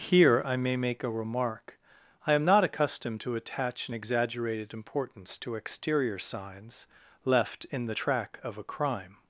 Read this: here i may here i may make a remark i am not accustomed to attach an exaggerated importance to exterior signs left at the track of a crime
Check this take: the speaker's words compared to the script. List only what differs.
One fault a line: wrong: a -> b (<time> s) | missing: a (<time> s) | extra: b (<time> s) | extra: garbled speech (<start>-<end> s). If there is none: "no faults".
missing: here i may (0.8 s)
wrong: at -> in (7.7 s)